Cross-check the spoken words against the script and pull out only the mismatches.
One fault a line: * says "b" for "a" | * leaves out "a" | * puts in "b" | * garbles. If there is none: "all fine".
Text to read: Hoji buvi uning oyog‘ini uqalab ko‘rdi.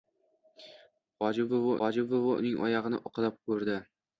* puts in "hoji buvi"